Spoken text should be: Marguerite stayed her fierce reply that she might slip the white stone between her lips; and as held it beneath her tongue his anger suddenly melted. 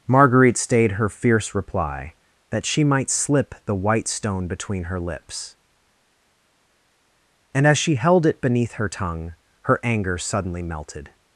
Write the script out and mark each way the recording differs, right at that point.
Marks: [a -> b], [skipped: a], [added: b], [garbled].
Marguerite stayed her fierce reply that she might slip the white stone between her lips; and as [added: she] held it beneath her tongue [his -> her] anger suddenly melted.